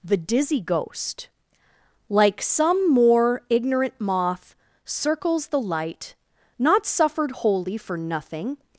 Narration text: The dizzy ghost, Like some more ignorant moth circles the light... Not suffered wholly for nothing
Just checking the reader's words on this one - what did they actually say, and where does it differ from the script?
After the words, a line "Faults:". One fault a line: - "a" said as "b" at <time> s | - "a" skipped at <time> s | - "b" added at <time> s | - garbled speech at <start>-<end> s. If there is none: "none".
The dizzy ghost, Like some more ignorant moth circles the light... Not suffered wholly for nothing
Faults:
none